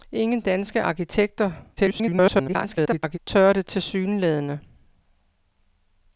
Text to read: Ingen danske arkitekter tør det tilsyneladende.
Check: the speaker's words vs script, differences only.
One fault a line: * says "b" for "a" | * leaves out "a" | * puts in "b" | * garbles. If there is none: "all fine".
* garbles